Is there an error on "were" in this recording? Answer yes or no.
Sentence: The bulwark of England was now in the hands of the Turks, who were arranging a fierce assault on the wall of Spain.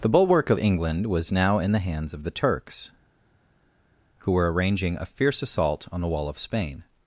no